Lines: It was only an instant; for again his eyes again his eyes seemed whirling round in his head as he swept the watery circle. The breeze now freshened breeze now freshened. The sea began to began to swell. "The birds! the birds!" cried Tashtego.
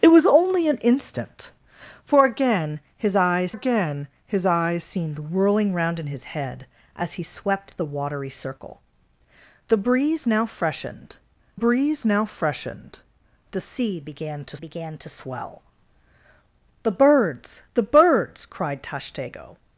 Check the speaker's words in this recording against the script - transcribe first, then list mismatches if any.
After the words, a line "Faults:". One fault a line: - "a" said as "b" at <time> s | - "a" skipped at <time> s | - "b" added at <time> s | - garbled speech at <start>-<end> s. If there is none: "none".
It was only an instant; for again his eyes again his eyes seemed whirling round in his head as he swept the watery circle. The breeze now freshened breeze now freshened. The sea began to began to swell. "The birds! the birds!" cried Tashtego.
Faults:
none